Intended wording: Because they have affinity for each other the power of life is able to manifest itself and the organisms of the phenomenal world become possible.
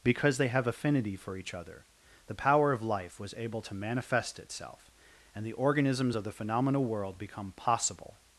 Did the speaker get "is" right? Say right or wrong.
wrong